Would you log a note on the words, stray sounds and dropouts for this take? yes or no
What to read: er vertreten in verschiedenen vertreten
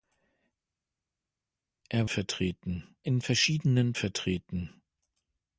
no